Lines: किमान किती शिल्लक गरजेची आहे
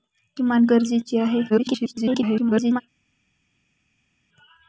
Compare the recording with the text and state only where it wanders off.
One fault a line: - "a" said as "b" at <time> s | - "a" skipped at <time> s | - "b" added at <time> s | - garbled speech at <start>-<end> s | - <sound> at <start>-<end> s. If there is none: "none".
- "किती शिल्लक" skipped at 0.7 s
- garbled speech at 1.5-2.8 s